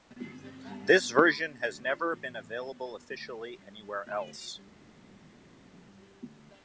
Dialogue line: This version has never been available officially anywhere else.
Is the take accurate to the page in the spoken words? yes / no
yes